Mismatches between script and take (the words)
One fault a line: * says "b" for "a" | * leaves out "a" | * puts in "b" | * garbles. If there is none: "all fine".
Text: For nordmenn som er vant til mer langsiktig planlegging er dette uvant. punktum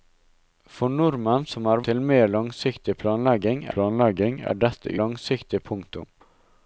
* leaves out "vant"
* puts in "planlegging"
* says "langsiktig" for "uvant"